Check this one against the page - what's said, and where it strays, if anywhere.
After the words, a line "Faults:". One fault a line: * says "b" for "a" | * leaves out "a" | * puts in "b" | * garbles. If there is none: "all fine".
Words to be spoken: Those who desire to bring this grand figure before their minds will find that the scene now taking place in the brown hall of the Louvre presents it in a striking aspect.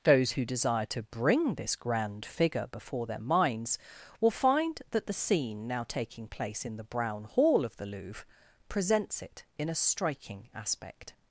Those who desire to bring this grand figure before their minds will find that the scene now taking place in the brown hall of the Louvre presents it in a striking aspect.
Faults:
all fine